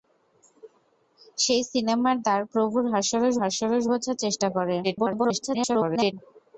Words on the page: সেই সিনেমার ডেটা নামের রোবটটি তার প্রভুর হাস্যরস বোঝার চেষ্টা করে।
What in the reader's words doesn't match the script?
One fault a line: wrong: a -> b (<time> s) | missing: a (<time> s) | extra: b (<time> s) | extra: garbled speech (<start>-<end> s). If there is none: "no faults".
missing: ডেটা নামের রোবটটি (2.1 s)
extra: হাস্যরস (3.4 s)
extra: garbled speech (4.8-6.1 s)